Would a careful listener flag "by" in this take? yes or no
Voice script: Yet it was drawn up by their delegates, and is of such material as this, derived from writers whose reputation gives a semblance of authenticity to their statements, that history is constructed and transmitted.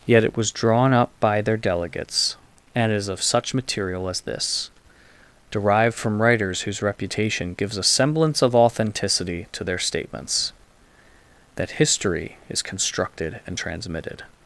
no